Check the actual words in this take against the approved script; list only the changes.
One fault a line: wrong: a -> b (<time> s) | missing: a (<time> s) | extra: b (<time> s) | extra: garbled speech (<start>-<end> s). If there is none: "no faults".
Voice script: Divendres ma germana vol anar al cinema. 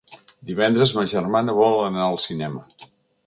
no faults